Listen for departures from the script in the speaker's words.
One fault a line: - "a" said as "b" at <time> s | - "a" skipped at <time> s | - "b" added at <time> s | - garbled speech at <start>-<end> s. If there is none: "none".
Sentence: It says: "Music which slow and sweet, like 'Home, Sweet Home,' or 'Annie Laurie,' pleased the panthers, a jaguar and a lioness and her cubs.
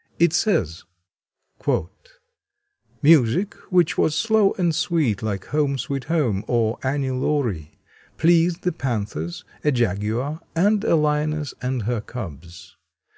- "was" added at 4.0 s